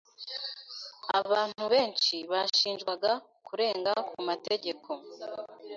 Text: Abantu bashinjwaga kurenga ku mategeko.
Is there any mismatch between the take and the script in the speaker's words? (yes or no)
yes